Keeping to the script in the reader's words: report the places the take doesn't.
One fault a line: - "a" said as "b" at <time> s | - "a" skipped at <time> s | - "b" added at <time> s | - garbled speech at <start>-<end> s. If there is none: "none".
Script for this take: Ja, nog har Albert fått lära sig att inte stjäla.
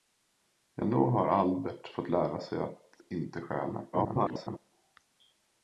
- garbled speech at 3.9-4.6 s